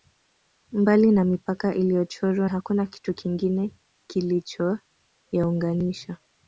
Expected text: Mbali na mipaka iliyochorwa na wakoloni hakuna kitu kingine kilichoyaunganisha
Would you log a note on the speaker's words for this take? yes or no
yes